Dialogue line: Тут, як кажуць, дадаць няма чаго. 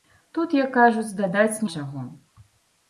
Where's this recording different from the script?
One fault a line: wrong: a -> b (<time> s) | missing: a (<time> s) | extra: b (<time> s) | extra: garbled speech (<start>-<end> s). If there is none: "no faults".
missing: няма (1.6 s)